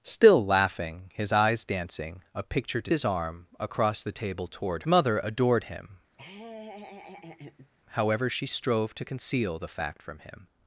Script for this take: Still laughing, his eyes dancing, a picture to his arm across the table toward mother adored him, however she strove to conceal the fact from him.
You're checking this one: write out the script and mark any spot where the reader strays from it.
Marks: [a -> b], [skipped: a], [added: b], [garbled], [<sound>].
Still laughing, his eyes dancing, a picture to his arm across the table toward mother adored him, [laugh] however she strove to conceal the fact from him.